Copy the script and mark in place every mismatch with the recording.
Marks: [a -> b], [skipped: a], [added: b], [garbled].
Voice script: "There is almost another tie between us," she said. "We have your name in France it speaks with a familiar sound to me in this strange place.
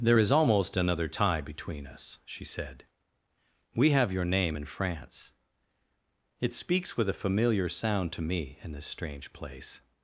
"There is almost another tie between us," she said. "We have your name in France it speaks with a familiar sound to me in this strange place.